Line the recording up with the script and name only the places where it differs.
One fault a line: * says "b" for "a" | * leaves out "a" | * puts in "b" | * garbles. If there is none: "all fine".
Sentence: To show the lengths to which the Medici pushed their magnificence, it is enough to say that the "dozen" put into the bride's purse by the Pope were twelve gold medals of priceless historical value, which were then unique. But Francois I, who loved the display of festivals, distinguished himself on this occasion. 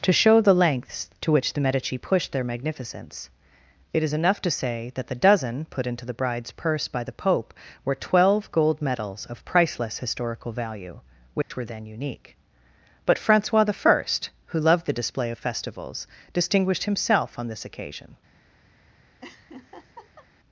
all fine